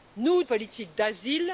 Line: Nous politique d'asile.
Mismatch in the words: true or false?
false